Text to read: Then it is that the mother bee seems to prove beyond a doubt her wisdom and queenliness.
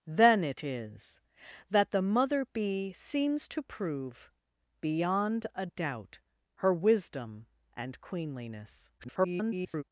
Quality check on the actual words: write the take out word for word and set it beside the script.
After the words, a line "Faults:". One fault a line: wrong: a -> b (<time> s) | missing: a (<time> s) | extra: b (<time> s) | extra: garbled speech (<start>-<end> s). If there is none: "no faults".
Then it is that the mother bee seems to prove beyond a doubt her wisdom and queenliness. [garbled]
Faults:
extra: garbled speech (9.0-9.8 s)